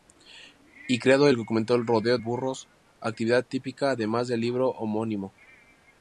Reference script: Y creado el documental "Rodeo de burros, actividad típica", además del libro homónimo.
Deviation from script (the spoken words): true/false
true